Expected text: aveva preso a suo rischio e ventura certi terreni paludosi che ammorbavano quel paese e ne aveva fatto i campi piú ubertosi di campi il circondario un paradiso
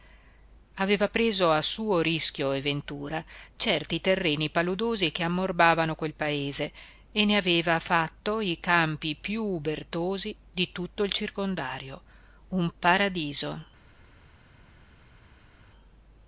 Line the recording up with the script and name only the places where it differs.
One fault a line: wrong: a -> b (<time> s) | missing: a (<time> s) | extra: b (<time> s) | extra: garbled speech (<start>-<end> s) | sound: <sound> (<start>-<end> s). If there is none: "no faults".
wrong: campi -> tutto (10.7 s)